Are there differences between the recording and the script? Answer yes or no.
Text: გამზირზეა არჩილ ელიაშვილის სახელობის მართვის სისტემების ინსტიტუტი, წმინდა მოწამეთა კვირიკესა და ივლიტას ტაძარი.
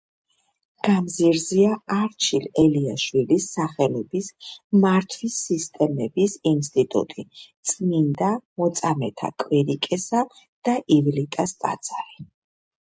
no